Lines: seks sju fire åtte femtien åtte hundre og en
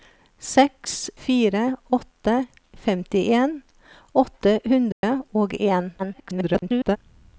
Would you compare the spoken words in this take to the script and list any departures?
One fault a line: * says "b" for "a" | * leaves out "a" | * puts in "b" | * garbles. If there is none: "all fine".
* leaves out "sju"
* garbles